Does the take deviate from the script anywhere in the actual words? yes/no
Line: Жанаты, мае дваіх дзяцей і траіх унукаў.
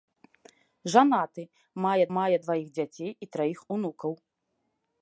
yes